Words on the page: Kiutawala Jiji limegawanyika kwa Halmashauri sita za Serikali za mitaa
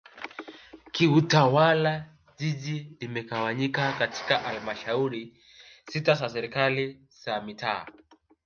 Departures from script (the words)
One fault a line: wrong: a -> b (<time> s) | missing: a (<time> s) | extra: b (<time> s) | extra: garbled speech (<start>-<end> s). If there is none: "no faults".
wrong: kwa -> katika (3.9 s)